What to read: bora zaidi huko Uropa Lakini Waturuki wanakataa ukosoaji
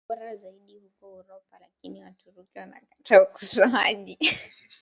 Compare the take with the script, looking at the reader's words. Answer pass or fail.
pass